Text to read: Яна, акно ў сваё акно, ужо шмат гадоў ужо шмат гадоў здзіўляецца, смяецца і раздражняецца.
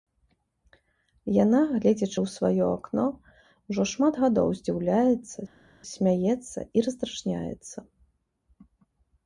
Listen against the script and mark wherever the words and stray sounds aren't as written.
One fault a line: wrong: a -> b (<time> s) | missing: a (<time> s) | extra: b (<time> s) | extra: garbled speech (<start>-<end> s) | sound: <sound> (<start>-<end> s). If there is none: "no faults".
wrong: акно -> гледзячы (1.7 s)
missing: ужо шмат гадоў (4.5 s)